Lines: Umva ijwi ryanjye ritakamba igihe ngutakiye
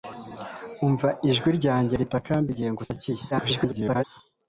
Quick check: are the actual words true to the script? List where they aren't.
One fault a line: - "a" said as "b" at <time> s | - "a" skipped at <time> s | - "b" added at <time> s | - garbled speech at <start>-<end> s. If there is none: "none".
- garbled speech at 3.3-4.0 s